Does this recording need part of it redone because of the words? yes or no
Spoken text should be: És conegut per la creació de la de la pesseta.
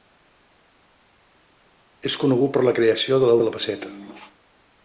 no